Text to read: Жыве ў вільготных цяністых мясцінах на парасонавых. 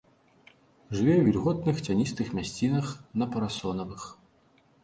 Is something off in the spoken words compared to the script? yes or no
no